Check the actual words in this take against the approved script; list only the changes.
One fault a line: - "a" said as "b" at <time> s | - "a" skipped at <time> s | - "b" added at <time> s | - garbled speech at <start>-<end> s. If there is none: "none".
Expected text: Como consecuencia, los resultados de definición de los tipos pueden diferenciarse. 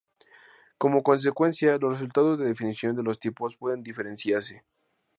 none